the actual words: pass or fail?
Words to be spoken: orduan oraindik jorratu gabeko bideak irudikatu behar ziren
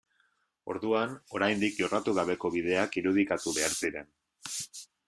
pass